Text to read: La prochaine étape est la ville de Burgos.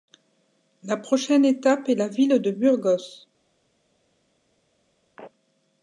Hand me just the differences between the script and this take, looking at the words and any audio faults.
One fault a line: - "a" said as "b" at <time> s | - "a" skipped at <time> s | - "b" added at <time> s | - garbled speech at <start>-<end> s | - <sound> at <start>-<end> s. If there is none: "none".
none